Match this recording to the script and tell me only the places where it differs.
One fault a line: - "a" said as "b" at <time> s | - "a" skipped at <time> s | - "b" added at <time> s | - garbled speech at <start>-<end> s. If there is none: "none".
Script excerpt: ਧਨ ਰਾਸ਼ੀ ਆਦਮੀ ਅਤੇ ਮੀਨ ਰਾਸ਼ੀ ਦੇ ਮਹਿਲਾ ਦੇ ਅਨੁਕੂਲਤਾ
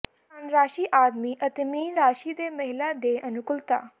none